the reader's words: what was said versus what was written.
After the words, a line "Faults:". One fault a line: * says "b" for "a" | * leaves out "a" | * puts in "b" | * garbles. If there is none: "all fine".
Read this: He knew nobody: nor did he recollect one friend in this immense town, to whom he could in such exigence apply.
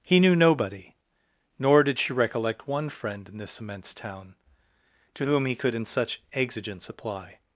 He knew nobody: nor did she recollect one friend in this immense town, to whom he could in such exigence apply.
Faults:
* says "she" for "he"